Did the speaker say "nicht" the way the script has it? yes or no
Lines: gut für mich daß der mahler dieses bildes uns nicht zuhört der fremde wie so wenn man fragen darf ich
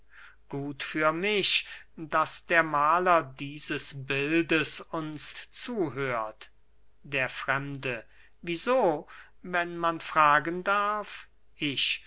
no